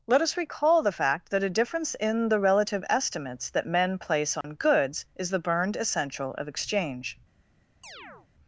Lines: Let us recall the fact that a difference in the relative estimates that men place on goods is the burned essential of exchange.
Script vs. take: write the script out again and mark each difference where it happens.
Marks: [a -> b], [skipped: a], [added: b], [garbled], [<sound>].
Let us recall the fact that a difference in the relative estimates that men place on [dropout] goods is the burned essential of exchange. [chirp]